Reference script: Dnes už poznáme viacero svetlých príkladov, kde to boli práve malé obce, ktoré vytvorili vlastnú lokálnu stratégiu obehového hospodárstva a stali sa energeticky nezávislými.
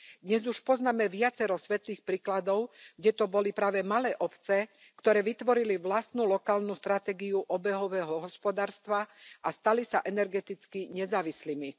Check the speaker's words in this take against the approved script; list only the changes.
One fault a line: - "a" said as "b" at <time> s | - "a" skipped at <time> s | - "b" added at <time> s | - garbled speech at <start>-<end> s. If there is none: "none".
none